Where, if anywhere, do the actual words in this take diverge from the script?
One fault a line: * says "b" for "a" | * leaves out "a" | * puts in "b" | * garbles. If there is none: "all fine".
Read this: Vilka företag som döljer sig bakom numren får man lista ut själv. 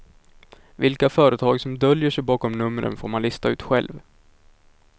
all fine